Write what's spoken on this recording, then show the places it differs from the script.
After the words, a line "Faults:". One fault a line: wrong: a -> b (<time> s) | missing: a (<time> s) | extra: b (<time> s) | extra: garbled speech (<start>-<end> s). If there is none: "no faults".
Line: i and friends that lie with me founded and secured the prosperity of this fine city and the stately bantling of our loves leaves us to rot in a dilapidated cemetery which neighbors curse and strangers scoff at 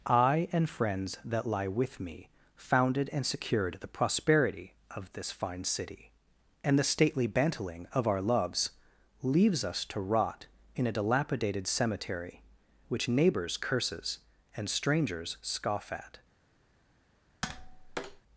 i and friends that lie with me founded and secured the prosperity of this fine city and the stately bantling of our loves leaves us to rot in a dilapidated cemetery which neighbors curses and strangers scoff at
Faults:
wrong: curse -> curses (13.6 s)